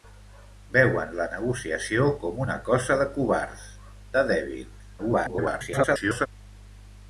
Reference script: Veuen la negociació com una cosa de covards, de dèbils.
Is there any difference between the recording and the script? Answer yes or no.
yes